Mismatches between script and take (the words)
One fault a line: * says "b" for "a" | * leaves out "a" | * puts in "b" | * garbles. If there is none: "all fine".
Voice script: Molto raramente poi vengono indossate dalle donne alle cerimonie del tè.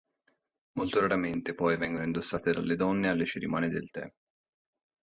all fine